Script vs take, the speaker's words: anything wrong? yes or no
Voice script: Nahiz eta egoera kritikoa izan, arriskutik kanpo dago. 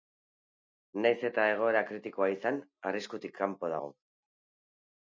no